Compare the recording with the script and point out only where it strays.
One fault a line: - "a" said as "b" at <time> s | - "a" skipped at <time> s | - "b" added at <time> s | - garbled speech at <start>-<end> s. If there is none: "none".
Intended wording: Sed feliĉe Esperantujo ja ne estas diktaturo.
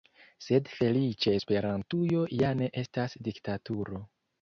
none